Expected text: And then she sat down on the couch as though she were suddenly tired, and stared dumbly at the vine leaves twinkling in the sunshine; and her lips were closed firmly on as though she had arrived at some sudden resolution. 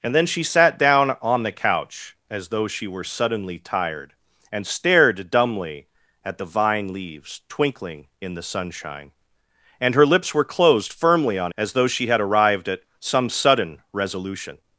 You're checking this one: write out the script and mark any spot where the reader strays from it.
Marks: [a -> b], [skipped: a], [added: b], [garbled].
And then she sat down on the couch as though she were suddenly tired, and stared dumbly at the vine leaves twinkling in the sunshine; and her lips were closed firmly on as though she had arrived at some sudden resolution.